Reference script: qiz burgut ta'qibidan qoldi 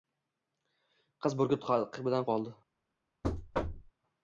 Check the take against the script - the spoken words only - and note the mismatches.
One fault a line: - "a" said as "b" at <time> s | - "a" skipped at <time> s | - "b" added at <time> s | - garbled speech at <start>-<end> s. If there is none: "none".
none